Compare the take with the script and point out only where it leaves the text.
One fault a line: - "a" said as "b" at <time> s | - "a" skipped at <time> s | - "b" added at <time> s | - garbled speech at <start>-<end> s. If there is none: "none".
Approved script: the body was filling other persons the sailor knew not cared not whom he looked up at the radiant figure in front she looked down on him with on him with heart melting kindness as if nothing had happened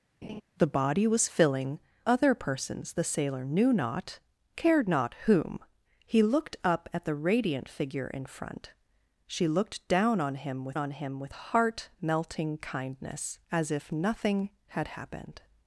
none